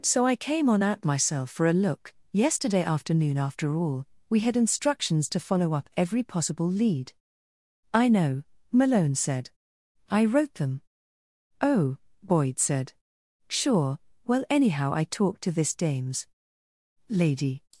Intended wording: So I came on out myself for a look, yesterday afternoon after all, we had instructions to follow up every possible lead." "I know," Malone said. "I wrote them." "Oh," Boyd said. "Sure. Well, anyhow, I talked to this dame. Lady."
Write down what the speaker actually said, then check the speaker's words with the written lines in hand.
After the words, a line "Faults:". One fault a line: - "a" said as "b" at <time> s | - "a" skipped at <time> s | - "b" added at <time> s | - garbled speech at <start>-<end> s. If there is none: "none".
So I came on out myself for a look, yesterday afternoon after all, we had instructions to follow up every possible lead." "I know," Malone said. "I wrote them." "Oh," Boyd said. "Sure. Well, anyhow, I talked to this dames. Lady."
Faults:
- "dame" said as "dames" at 15.8 s